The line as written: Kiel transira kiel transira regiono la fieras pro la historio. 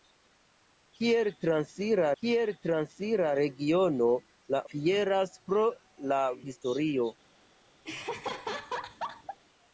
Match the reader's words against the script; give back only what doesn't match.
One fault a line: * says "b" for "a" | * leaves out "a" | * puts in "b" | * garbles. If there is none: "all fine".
all fine